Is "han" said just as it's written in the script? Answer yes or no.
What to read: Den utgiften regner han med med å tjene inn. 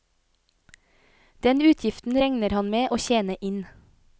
yes